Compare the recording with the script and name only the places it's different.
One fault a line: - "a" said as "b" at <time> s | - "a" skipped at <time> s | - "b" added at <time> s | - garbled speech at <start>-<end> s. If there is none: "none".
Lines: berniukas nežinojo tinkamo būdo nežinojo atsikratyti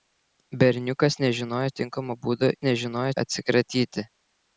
none